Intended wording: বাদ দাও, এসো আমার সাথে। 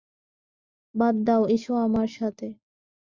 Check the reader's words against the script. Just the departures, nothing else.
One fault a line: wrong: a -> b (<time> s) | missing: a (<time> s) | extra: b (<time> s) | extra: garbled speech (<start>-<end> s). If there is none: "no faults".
no faults